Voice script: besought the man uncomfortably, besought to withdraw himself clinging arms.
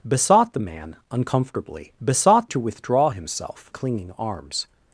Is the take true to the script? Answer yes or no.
yes